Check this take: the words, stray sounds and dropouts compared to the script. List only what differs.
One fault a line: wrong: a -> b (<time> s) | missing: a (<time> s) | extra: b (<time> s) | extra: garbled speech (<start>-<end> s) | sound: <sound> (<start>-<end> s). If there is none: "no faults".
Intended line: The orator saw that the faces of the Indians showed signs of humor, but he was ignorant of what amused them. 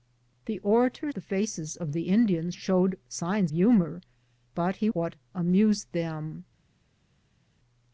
missing: saw that (1.1 s)
missing: of (3.5 s)
missing: was ignorant of (4.9 s)